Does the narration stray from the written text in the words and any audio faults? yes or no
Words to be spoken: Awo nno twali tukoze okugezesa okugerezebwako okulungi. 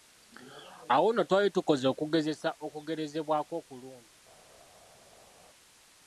no